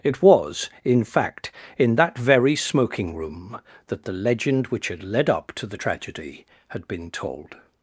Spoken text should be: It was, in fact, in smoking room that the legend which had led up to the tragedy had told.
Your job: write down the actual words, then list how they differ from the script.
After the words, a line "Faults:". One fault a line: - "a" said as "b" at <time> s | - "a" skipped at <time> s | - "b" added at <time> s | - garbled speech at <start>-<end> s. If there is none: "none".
It was, in fact, in that very smoking room that the legend which had led up to the tragedy had been told.
Faults:
- "that very" added at 1.9 s
- "been" added at 6.9 s